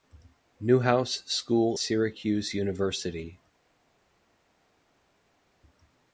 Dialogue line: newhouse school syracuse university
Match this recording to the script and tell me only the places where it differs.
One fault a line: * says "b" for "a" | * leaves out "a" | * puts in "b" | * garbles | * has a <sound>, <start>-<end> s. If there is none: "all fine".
all fine